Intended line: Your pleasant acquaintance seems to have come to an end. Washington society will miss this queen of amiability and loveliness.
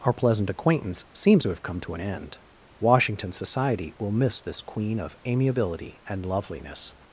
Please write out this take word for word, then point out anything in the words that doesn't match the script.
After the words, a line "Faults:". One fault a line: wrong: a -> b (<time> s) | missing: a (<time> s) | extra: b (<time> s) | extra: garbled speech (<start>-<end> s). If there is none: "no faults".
Our pleasant acquaintance seems to have come to an end. Washington society will miss this queen of amiability and loveliness.
Faults:
wrong: Your -> Our (0.0 s)